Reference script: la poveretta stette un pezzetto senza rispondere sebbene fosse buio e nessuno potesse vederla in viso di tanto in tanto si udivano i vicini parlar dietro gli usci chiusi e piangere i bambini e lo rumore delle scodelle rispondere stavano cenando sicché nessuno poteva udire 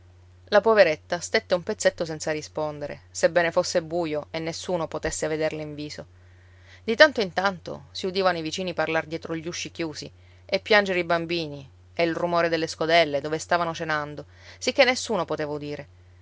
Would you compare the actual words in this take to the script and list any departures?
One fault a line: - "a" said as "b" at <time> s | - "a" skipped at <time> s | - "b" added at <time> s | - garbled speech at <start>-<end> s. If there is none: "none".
- "lo" said as "il" at 12.0 s
- "rispondere" said as "dove" at 13.2 s